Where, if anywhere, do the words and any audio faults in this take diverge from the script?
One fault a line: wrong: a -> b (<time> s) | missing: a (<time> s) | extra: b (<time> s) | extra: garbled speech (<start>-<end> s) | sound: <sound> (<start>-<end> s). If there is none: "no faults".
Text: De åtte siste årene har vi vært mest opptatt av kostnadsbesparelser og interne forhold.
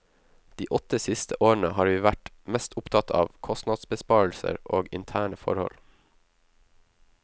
no faults